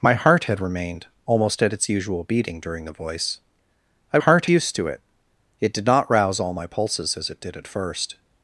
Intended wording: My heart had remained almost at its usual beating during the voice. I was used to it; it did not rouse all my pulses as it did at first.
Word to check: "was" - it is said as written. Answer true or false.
false